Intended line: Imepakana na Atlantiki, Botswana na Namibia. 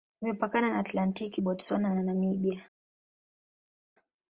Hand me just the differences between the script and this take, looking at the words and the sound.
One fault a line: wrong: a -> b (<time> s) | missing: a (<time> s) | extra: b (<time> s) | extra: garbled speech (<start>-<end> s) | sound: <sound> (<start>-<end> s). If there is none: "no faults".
no faults